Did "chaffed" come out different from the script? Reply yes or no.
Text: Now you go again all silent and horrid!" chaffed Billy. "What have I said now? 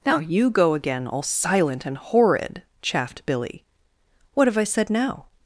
no